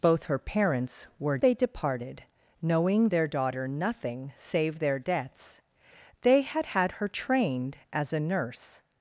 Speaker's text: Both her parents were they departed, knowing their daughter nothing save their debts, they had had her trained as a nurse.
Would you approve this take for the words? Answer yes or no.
yes